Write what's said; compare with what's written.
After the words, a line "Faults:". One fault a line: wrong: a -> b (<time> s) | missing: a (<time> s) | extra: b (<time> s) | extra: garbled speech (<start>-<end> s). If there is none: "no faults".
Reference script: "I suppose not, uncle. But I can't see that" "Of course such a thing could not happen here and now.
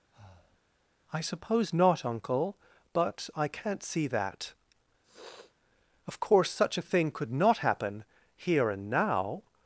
"I suppose not, uncle. But I can't see that" "Of course such a thing could not happen here and now.
Faults:
no faults